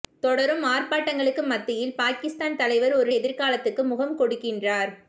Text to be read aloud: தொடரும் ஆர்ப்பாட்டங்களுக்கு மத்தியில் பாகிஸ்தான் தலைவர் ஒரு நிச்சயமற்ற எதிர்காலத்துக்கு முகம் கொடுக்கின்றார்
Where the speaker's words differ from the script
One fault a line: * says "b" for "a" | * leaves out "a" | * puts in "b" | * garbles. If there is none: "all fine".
* leaves out "நிச்சயமற்ற"